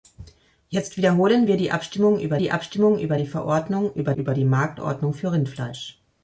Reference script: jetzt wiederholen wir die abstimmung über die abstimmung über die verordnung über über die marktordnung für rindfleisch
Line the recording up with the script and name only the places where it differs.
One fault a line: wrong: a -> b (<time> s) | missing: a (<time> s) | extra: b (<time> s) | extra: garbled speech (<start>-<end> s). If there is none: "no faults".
no faults